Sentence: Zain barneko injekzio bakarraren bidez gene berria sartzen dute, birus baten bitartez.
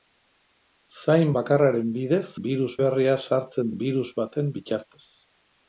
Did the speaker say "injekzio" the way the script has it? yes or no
no